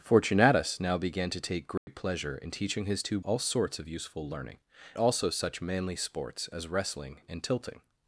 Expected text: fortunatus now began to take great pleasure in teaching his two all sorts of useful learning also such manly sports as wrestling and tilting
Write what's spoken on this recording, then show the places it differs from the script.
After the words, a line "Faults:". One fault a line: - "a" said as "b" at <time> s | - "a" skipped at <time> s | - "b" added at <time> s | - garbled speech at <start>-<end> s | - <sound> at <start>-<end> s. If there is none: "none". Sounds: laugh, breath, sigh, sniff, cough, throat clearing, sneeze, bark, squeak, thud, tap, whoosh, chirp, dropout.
fortunatus now began to take great pleasure in teaching his two all sorts of useful learning also such manly sports as wrestling and tilting
Faults:
- dropout at 1.8-1.9 s